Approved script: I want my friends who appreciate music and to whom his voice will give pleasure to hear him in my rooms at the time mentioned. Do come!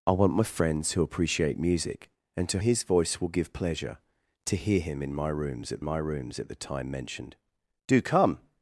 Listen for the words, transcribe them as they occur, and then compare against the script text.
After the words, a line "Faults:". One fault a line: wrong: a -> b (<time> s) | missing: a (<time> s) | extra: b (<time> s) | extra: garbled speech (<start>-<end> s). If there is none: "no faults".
I want my friends who appreciate music and to his voice will give pleasure to hear him in my rooms at my rooms at the time mentioned. Do come!
Faults:
missing: whom (2.6 s)
extra: my rooms at (5.8 s)